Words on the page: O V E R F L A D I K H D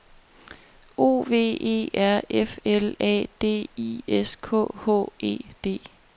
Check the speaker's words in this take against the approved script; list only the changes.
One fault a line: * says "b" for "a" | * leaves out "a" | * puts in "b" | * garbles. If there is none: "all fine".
* puts in "S"
* puts in "E"